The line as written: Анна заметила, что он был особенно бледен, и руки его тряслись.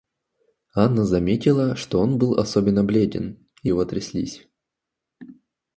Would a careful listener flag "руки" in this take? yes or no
yes